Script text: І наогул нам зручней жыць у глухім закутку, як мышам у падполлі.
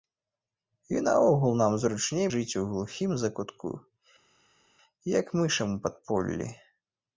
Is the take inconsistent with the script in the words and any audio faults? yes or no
no